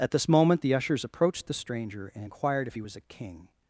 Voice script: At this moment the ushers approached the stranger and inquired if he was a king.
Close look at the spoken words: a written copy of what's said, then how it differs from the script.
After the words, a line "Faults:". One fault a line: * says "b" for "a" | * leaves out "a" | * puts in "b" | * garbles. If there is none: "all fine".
At this moment the ushers approached the stranger and inquired if he was a king.
Faults:
all fine